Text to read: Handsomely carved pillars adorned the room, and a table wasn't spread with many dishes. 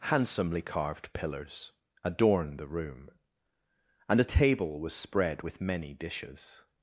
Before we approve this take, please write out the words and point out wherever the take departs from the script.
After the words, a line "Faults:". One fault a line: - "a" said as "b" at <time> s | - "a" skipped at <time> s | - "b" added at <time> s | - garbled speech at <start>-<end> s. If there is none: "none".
Handsomely carved pillars adorned the room, and a table was spread with many dishes.
Faults:
- "wasn't" said as "was" at 4.8 s